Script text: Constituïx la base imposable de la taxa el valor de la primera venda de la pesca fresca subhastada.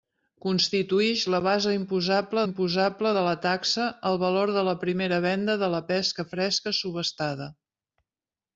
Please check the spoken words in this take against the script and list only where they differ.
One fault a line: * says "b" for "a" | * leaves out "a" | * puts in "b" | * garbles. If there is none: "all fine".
* puts in "imposable"